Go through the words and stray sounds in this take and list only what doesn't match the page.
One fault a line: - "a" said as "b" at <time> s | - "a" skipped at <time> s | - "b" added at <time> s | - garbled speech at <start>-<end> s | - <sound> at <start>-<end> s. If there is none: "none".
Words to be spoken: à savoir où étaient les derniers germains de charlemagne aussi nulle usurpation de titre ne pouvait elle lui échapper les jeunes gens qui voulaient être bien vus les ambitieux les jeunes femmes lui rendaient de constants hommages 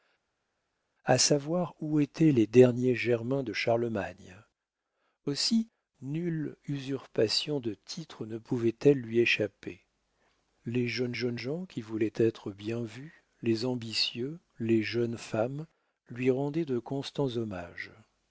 - "jeunes" added at 11.1 s